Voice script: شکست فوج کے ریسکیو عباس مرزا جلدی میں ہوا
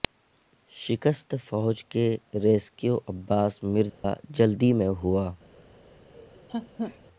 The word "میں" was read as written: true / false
true